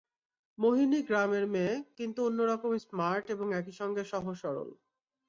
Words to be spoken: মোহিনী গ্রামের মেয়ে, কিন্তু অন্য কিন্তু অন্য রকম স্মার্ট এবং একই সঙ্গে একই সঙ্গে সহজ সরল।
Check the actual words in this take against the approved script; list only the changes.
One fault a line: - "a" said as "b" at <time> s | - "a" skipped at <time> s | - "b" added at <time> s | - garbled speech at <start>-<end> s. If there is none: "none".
- "কিন্তু অন্য" skipped at 2.4 s
- "একই সঙ্গে" skipped at 4.0 s